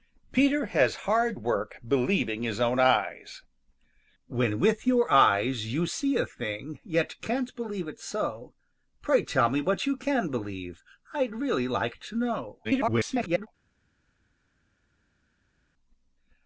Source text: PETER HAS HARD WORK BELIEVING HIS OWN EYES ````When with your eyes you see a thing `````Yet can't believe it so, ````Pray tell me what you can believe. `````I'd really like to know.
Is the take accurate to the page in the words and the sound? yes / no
no